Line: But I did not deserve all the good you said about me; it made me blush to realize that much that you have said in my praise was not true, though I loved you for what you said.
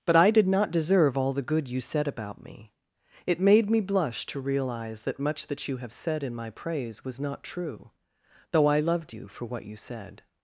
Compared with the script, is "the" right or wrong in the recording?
right